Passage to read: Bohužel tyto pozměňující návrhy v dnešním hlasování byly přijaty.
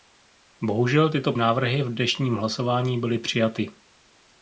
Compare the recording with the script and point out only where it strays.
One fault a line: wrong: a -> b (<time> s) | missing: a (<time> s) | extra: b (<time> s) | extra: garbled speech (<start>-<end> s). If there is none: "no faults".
missing: pozměňující (1.3 s)